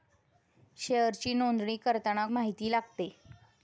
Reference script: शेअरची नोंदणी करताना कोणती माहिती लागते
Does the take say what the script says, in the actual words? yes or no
no